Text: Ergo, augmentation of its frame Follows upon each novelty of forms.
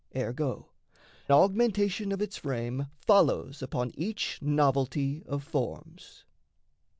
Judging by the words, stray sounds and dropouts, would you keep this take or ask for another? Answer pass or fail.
pass